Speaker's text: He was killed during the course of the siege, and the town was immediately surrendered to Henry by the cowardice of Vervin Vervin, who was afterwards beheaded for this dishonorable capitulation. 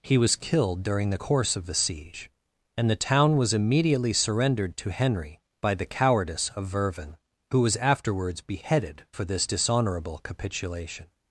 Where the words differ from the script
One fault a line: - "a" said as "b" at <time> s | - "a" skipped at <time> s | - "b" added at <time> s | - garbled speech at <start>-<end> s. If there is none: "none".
- "Vervin" skipped at 7.2 s